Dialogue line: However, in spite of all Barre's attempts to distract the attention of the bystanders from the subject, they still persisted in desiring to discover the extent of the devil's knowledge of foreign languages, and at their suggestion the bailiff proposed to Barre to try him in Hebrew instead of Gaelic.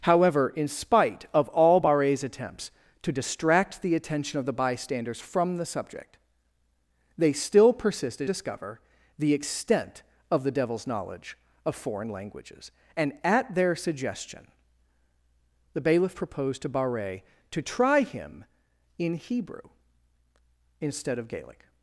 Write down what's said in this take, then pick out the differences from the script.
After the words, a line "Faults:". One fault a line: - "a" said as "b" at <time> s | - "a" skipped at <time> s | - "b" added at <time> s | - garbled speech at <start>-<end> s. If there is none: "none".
However, in spite of all Barre's attempts to distract the attention of the bystanders from the subject, they still persisted discover the extent of the devil's knowledge of foreign languages, and at their suggestion the bailiff proposed to Barre to try him in Hebrew instead of Gaelic.
Faults:
- "in desiring to" skipped at 8.3 s